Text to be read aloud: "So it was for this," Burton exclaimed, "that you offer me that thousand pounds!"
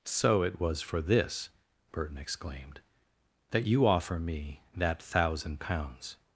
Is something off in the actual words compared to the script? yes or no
no